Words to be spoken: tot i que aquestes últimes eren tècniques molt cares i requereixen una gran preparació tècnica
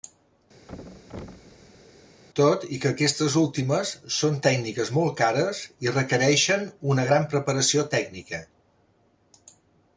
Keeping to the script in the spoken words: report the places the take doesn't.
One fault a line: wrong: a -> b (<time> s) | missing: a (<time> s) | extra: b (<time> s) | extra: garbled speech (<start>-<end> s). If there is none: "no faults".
wrong: eren -> són (4.2 s)